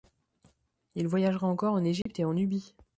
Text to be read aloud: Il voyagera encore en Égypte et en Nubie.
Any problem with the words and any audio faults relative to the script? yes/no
yes